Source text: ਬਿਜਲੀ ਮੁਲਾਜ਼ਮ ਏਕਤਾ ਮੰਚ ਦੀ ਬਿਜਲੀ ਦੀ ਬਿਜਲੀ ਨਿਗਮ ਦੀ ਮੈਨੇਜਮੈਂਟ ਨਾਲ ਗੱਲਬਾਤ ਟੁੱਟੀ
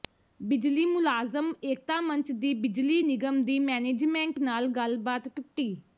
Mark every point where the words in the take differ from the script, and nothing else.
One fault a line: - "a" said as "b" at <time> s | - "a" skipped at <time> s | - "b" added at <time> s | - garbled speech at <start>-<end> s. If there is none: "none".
- "ਦੀ ਬਿਜਲੀ" skipped at 3.0 s